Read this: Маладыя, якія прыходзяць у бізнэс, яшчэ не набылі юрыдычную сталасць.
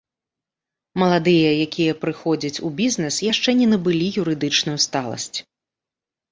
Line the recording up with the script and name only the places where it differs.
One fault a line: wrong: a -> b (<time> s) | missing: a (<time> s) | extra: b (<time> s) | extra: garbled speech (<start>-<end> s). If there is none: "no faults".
no faults